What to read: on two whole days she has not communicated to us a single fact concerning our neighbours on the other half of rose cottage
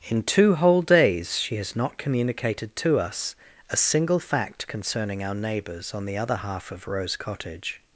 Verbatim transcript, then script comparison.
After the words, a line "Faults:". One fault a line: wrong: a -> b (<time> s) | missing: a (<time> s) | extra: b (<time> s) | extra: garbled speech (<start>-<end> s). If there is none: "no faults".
in two whole days she has not communicated to us a single fact concerning our neighbours on the other half of rose cottage
Faults:
wrong: on -> in (0.1 s)